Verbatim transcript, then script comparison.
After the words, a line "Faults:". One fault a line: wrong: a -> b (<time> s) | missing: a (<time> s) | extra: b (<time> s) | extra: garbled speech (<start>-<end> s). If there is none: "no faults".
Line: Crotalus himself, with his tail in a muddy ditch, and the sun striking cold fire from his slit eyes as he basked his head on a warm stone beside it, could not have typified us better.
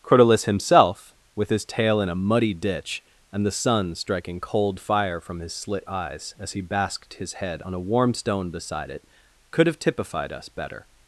Crotalus himself, with his tail in a muddy ditch, and the sun striking cold fire from his slit eyes as he basked his head on a warm stone beside it, could have typified us better.
Faults:
missing: not (9.7 s)